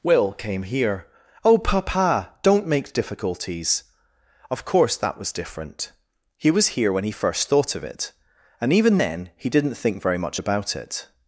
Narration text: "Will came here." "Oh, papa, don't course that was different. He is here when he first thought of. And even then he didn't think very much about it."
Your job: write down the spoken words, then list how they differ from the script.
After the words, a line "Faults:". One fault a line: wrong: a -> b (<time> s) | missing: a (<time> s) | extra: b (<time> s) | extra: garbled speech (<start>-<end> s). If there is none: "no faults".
"Will came here." "Oh, papa, don't make difficulties. Of course that was different. He was here when he first thought of it. And even then he didn't think very much about it."
Faults:
extra: make difficulties Of (2.6 s)
wrong: is -> was (6.5 s)
extra: it (7.8 s)